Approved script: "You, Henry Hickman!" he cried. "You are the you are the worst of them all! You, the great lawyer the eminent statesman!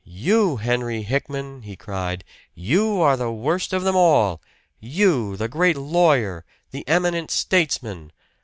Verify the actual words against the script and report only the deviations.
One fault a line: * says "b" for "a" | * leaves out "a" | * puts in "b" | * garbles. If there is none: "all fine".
* leaves out "you are the"